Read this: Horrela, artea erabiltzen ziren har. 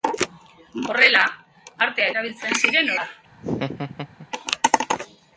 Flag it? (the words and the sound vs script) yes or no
yes